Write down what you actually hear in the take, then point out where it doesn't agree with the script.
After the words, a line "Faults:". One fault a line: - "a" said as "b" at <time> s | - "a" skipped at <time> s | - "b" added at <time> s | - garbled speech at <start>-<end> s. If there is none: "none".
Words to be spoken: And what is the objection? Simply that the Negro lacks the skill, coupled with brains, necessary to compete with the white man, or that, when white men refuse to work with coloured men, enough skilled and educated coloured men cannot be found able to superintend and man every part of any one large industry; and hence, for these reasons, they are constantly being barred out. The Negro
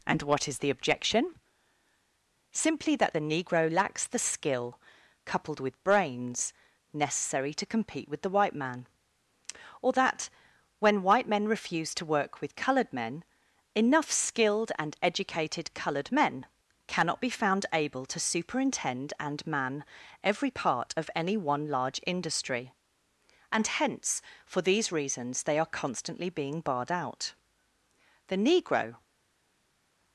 And what is the objection? Simply that the Negro lacks the skill, coupled with brains, necessary to compete with the white man, or that, when white men refuse to work with coloured men, enough skilled and educated coloured men cannot be found able to superintend and man every part of any one large industry; and hence, for these reasons, they are constantly being barred out. The Negro
Faults:
none